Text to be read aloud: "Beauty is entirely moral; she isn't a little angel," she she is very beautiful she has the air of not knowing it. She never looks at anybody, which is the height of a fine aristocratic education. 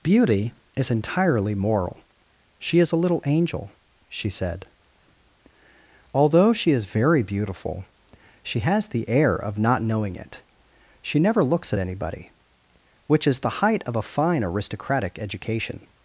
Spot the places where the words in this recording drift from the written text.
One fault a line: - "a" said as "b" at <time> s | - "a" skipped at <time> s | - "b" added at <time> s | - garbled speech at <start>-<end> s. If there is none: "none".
- "isn't" said as "is" at 2.8 s
- "said Although" added at 4.3 s